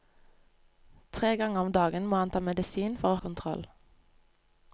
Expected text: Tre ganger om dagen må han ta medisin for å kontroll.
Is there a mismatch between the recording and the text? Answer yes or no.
no